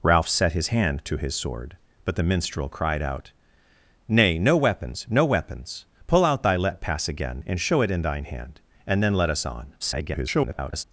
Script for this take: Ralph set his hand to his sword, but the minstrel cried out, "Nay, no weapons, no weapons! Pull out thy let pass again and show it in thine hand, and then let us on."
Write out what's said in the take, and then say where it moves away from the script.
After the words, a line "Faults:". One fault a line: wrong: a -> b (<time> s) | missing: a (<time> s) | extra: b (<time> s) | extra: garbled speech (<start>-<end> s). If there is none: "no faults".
Ralph set his hand to his sword, but the minstrel cried out, "Nay, no weapons, no weapons! Pull out thy let pass again and show it in thine hand, and then let us on." [garbled]
Faults:
extra: garbled speech (9.8-10.8 s)